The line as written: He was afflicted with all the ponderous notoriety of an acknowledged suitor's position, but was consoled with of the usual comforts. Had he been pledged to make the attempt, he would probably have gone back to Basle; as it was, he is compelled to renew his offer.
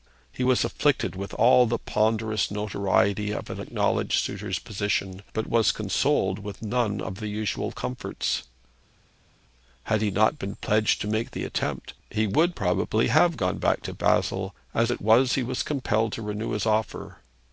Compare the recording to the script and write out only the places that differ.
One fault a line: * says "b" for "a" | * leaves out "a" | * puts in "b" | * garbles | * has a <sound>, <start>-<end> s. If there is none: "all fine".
* puts in "none"
* puts in "not"
* says "was" for "is"